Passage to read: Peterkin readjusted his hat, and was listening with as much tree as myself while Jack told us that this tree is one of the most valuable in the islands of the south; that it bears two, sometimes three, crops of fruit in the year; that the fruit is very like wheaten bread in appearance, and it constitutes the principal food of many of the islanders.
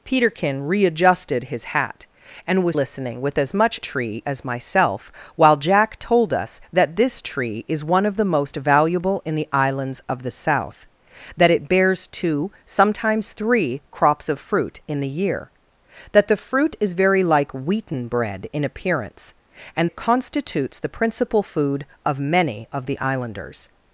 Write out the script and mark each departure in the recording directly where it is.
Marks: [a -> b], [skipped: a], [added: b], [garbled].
Peterkin readjusted his hat, and was listening with as much tree as myself while Jack told us that this tree is one of the most valuable in the islands of the south; that it bears two, sometimes three, crops of fruit in the year; that the fruit is very like wheaten bread in appearance, and it constitutes the principal food of many of the islanders.